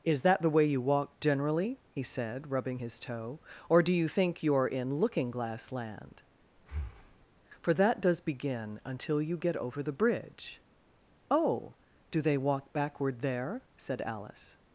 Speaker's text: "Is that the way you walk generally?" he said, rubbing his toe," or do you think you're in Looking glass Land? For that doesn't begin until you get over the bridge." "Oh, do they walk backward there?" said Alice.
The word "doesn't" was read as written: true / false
false